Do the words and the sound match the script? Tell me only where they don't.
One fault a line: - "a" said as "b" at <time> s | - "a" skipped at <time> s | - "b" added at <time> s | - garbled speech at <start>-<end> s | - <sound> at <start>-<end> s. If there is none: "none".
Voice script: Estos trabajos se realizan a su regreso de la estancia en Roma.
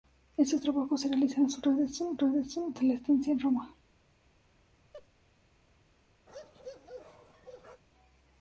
- "regreso" added at 2.2 s
- laugh at 4.9-5.1 s
- bark at 6.3-7.8 s